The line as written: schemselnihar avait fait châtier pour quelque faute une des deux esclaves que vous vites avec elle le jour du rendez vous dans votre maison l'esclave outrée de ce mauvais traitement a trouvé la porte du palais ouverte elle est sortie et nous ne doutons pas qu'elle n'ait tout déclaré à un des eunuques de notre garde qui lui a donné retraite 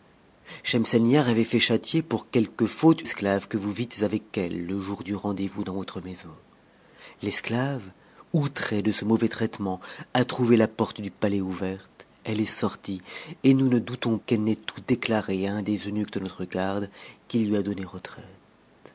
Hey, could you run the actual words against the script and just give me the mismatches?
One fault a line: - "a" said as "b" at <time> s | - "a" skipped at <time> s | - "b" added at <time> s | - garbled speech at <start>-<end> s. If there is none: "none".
- "une des deux" skipped at 3.0 s
- "pas" skipped at 14.2 s